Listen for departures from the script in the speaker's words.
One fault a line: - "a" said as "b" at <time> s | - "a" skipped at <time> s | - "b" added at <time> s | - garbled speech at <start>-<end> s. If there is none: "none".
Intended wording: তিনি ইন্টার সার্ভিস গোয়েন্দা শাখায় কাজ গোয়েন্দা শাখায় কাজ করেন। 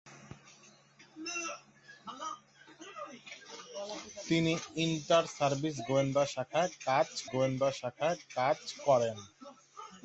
none